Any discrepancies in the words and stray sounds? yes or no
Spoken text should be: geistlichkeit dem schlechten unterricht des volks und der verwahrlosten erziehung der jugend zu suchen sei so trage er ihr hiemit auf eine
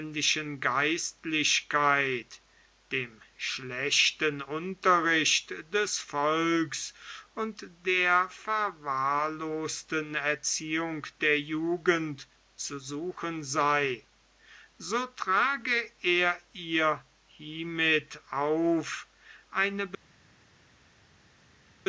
no